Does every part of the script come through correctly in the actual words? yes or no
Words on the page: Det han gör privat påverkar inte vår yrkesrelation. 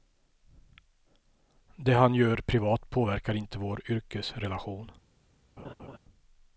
yes